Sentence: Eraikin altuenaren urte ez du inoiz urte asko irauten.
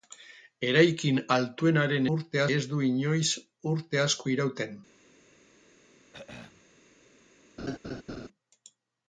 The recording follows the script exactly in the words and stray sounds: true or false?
false